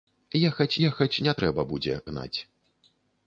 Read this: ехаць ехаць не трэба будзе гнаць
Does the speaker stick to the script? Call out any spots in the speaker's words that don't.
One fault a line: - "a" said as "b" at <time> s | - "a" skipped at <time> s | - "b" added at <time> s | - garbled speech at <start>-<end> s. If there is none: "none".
none